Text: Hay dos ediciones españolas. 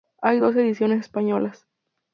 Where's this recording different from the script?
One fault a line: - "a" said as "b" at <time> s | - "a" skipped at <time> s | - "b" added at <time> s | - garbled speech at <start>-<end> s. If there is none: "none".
none